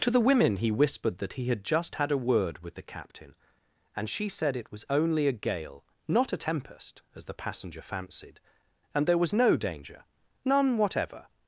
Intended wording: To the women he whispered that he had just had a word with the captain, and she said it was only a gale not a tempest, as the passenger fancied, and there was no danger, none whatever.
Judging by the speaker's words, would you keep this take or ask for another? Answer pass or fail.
pass